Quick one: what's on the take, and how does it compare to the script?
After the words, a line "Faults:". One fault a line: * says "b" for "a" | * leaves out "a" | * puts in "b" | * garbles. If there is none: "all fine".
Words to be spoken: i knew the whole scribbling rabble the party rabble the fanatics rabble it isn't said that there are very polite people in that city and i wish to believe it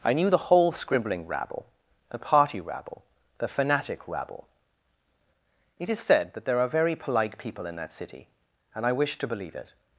i knew the whole scribbling rabble the party rabble the fanatic rabble it is said that there are very polite people in that city and i wish to believe it
Faults:
* says "fanatic" for "fanatics"
* says "is" for "isn't"